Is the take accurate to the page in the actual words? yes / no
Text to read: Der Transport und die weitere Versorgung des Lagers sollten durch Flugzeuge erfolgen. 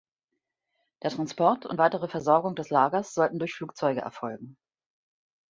no